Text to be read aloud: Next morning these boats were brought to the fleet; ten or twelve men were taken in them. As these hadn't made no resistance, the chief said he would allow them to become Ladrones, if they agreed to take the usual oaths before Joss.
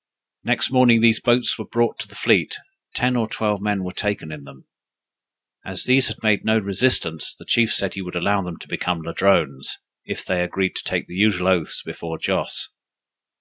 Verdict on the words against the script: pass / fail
fail